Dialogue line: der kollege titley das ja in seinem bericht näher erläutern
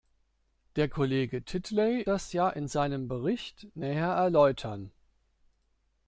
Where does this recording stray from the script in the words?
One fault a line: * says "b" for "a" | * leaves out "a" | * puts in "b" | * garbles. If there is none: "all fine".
all fine